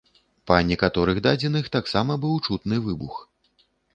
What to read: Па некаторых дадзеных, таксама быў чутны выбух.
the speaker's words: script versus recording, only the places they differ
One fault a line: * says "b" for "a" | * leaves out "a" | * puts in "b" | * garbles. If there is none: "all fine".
all fine